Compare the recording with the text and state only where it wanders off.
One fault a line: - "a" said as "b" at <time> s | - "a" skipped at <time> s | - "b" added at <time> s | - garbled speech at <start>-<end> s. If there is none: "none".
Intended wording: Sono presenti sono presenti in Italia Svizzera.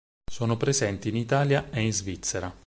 - "sono presenti" said as "in Italia e" at 1.1 s
- "Italia" skipped at 1.9 s